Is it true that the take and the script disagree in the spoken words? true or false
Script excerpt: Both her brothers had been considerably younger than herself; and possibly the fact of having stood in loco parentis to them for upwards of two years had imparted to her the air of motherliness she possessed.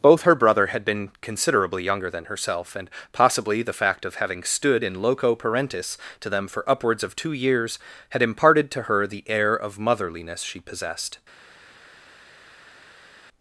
true